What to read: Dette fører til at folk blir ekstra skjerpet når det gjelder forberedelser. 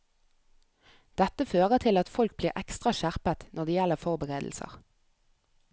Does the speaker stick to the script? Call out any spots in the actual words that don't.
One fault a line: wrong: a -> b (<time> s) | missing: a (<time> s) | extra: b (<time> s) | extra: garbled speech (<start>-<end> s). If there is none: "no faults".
no faults